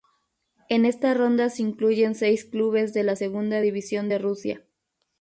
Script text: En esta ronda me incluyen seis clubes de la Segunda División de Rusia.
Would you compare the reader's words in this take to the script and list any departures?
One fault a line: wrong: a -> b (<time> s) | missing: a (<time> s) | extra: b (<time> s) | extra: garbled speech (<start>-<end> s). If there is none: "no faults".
wrong: me -> se (1.5 s)